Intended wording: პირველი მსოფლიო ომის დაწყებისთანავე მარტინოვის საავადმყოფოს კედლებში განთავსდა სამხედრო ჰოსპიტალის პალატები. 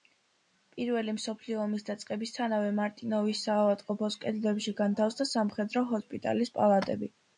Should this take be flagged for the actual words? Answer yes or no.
no